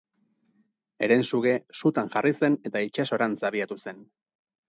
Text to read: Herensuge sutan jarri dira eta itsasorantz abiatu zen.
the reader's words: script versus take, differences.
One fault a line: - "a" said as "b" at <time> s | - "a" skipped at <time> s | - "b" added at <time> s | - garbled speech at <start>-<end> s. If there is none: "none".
- "dira" said as "zen" at 2.4 s